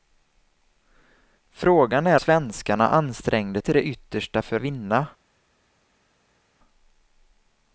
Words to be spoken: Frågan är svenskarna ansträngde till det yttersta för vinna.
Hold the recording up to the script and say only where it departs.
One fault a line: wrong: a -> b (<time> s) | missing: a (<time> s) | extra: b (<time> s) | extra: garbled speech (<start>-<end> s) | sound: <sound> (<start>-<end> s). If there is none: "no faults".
no faults